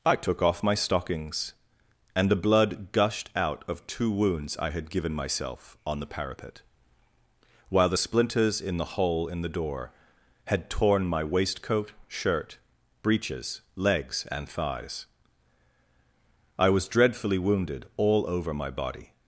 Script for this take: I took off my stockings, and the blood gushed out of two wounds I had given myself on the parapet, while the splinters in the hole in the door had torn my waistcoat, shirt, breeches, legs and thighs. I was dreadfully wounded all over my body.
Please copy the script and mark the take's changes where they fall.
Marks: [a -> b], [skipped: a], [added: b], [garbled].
I took off my stockings, and the blood gushed out of two wounds I had given myself on the parapet, while the splinters in the hole in the door had torn my waistcoat, shirt, breeches, legs and thighs. I was dreadfully wounded all over my body.